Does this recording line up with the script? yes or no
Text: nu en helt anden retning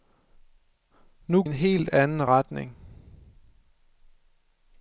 yes